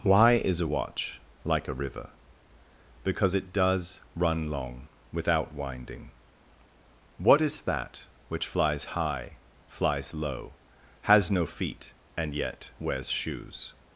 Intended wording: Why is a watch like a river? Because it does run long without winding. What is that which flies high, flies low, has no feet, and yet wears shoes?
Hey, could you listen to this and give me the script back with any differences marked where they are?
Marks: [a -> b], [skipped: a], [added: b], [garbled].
Why is a watch like a river? Because it does run long without winding. What is that which flies high, flies low, has no feet, and yet wears shoes?